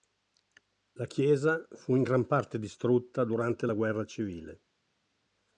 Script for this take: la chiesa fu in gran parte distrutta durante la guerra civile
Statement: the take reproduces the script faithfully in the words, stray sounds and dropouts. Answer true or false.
true